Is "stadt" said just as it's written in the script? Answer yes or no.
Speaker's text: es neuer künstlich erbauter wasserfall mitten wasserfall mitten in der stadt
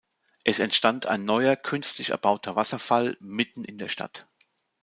yes